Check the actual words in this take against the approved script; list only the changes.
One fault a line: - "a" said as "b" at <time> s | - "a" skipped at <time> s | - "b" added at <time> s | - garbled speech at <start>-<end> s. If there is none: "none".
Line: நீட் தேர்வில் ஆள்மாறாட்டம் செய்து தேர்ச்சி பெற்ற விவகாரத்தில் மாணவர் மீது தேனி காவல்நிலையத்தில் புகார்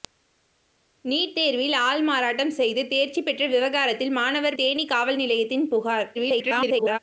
- "மீது" skipped at 4.6 s
- garbled speech at 6.1-7.0 s